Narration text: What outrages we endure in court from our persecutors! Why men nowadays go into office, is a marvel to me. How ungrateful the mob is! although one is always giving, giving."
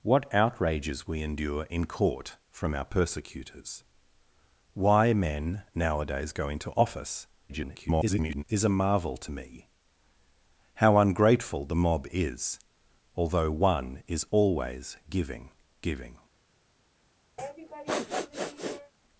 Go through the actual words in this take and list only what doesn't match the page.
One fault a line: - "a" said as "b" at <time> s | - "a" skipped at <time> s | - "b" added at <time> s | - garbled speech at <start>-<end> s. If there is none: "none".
- garbled speech at 7.5-8.4 s